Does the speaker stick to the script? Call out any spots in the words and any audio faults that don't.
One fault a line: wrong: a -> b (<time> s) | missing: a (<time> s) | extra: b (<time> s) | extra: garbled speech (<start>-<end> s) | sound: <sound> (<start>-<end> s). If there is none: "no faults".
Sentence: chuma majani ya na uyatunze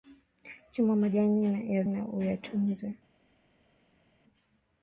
no faults